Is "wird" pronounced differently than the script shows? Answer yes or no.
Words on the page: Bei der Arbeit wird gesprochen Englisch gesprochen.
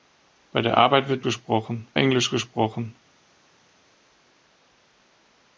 no